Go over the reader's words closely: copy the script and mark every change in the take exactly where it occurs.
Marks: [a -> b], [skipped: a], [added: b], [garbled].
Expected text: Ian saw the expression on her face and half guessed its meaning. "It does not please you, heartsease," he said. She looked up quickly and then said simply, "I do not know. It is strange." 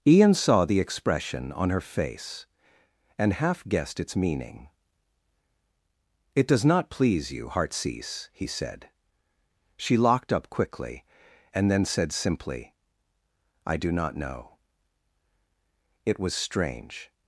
Ian saw the expression on her face and half guessed its meaning. "It does not please you, heartsease," he said. She [looked -> locked] up quickly and then said simply, "I do not know. It [is -> was] strange."